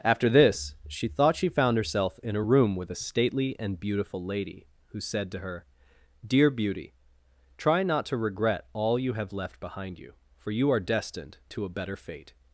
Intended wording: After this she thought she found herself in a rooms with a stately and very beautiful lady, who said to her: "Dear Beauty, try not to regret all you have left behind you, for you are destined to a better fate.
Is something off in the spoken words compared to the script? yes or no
yes